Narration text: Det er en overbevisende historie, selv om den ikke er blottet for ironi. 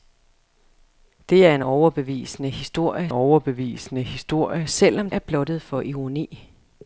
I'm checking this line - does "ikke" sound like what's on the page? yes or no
no